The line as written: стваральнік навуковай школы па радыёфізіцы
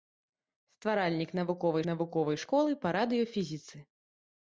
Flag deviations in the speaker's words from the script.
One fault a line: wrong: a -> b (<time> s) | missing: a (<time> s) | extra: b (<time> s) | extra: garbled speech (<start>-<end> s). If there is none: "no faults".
extra: навуковай (1.9 s)